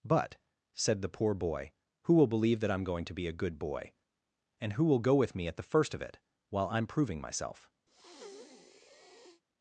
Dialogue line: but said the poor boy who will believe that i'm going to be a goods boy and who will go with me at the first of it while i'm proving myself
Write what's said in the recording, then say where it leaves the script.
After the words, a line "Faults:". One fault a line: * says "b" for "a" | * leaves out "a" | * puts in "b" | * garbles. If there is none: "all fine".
but said the poor boy who will believe that i'm going to be a good boy and who will go with me at the first of it while i'm proving myself
Faults:
* says "good" for "goods"